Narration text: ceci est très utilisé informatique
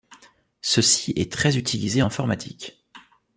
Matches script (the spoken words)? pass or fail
pass